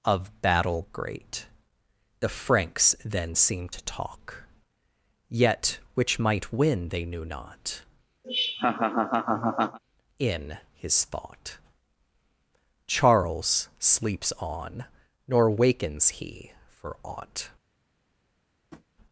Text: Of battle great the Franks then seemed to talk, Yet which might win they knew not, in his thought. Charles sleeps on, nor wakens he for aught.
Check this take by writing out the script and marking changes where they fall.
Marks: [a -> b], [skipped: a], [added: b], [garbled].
Of battle great the Franks then seemed to talk, Yet which might win they knew not, in his thought. Charles sleeps on, nor wakens he for aught.